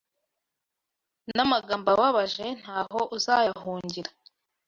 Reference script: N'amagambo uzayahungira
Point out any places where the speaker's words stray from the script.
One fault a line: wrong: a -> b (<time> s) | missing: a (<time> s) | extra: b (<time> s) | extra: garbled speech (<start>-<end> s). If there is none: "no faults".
extra: ababaje ntaho (1.9 s)